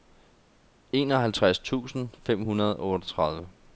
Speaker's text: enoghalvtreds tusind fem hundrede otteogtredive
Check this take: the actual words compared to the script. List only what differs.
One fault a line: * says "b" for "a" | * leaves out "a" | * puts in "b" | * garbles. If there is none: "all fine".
* puts in "og"